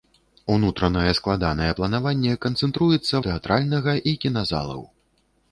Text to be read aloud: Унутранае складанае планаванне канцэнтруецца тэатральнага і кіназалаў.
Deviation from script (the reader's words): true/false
false